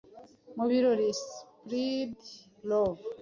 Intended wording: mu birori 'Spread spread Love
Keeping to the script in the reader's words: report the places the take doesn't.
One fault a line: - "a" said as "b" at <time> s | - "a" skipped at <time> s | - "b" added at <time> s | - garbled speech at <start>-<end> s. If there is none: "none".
- "spread" skipped at 2.2 s